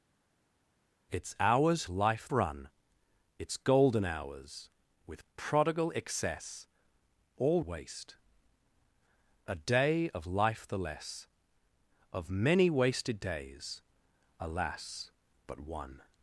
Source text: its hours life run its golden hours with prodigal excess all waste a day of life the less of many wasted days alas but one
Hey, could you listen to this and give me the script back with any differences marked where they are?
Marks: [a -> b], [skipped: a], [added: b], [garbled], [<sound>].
its hours life run its golden hours with prodigal excess all waste a day of life the less of many wasted days alas but one